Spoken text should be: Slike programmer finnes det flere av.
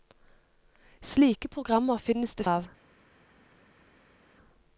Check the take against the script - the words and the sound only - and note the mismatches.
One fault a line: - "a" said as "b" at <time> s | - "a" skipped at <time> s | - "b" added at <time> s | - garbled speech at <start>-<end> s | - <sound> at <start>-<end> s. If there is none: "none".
- "flere" skipped at 2.4 s